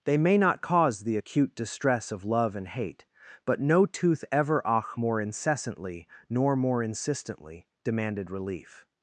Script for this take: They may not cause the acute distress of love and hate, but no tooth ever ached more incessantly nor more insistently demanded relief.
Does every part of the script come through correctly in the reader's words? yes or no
no